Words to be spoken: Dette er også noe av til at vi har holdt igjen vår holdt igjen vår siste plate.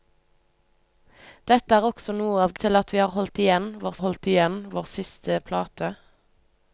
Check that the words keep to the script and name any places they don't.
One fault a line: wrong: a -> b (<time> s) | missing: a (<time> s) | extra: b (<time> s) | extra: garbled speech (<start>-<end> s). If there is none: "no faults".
no faults